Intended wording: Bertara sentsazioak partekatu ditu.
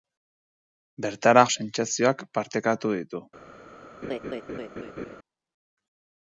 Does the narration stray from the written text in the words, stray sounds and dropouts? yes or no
yes